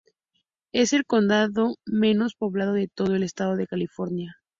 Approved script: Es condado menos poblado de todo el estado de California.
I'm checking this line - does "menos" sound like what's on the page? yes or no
yes